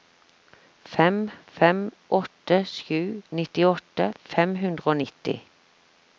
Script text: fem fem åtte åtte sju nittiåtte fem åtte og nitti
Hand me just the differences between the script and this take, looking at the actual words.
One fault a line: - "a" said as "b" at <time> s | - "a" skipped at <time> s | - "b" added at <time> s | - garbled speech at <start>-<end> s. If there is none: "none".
- "åtte" skipped at 2.6 s
- "åtte" said as "hundre" at 4.6 s